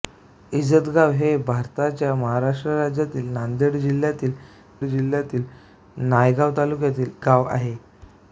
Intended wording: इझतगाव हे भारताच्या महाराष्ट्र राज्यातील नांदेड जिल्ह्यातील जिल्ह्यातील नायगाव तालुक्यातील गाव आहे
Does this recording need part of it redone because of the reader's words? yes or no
no